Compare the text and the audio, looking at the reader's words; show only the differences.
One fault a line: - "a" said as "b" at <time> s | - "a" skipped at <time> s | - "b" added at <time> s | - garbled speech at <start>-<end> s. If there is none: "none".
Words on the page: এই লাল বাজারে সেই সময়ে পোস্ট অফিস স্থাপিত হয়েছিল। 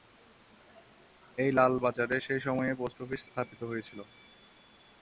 none